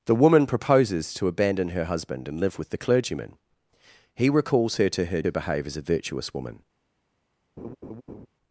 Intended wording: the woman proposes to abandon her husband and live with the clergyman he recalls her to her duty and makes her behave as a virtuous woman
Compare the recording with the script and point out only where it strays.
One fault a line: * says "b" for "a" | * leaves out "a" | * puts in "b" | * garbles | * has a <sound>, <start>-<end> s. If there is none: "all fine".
* leaves out "duty and makes"
* has a laugh, 7.6-8.3 s